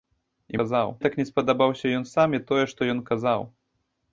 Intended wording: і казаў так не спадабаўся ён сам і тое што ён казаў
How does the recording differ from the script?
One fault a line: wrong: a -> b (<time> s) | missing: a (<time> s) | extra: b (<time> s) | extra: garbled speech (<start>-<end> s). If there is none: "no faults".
no faults